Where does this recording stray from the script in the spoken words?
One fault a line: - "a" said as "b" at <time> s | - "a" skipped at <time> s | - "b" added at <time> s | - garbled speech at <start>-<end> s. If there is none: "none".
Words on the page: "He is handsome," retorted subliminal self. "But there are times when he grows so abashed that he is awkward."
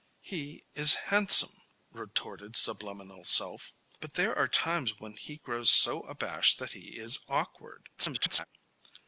- garbled speech at 8.0-8.5 s